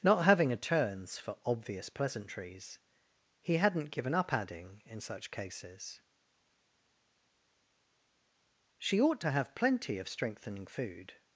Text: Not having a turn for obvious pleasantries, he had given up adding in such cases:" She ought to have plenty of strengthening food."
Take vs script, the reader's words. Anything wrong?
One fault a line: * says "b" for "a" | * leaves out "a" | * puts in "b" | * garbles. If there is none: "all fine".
* says "turns" for "turn"
* says "hadn't" for "had"